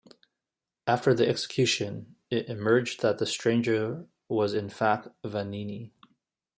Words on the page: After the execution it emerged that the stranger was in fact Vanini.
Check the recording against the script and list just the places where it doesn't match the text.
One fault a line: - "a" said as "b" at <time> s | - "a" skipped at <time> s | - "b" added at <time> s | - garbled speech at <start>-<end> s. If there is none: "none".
none